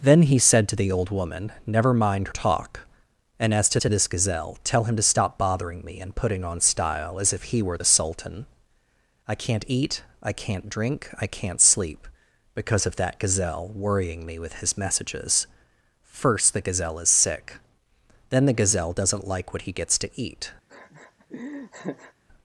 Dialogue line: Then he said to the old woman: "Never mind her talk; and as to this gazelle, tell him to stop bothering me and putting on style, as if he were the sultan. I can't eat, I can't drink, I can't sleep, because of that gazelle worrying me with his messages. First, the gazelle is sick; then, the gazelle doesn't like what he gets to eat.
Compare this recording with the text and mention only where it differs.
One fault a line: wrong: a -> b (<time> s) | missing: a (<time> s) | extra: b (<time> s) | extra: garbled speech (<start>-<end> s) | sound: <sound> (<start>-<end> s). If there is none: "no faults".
missing: her (2.3 s)
extra: to (3.8 s)
sound: laugh (20.7-22.1 s)